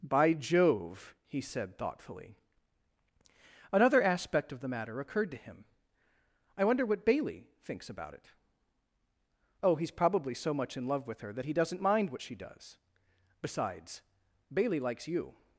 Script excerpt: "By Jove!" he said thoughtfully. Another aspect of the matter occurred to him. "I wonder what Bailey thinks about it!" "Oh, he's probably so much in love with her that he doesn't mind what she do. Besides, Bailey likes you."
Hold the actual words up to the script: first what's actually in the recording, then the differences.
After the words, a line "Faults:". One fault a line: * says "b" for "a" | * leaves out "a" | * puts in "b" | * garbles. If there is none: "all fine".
"By Jove!" he said thoughtfully. Another aspect of the matter occurred to him. "I wonder what Bailey thinks about it!" "Oh, he's probably so much in love with her that he doesn't mind what she does. Besides, Bailey likes you."
Faults:
* says "does" for "do"